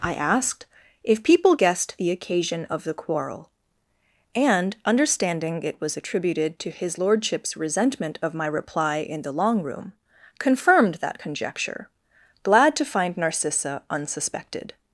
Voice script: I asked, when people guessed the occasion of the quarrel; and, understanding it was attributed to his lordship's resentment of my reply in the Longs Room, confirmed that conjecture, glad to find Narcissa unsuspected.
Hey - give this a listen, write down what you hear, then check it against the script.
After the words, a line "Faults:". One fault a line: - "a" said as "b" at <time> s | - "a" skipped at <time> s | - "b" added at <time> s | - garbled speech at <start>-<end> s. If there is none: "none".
I asked, if people guessed the occasion of the quarrel; and, understanding it was attributed to his lordship's resentment of my reply in the Long Room, confirmed that conjecture, glad to find Narcissa unsuspected.
Faults:
- "when" said as "if" at 1.0 s
- "Longs" said as "Long" at 9.3 s